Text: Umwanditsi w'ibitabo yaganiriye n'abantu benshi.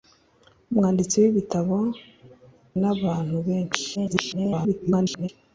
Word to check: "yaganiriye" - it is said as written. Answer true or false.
false